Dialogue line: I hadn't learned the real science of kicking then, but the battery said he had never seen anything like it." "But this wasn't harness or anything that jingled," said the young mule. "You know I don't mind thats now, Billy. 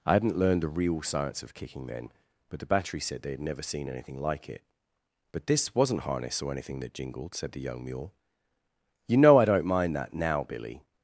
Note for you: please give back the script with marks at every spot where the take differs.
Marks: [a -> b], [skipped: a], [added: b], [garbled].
I hadn't learned the real science of kicking then, but the battery said [he -> they] had never seen anything like it." "But this wasn't harness or anything that jingled," said the young mule. "You know I don't mind [thats -> that] now, Billy.